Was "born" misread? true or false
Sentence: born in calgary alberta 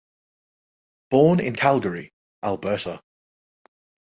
false